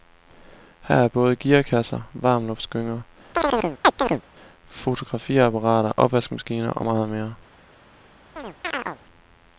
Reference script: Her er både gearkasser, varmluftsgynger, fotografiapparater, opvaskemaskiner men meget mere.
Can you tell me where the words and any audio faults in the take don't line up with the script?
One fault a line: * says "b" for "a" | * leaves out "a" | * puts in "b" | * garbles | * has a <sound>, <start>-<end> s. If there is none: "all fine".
* has a chirp, 3.3-4.2 s
* says "og" for "men"
* has a chirp, 8.4-9.0 s